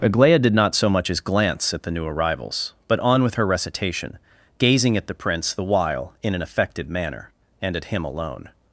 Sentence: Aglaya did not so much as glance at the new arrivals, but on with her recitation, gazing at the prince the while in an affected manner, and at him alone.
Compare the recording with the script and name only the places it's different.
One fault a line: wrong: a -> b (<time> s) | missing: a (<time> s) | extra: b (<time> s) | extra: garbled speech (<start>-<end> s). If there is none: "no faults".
no faults